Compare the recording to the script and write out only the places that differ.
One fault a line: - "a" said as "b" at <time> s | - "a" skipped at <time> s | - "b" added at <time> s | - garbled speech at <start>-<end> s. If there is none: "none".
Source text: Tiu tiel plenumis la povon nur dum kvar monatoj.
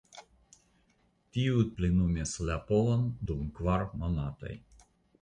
- "tiel" skipped at 1.6 s
- "nur" skipped at 3.1 s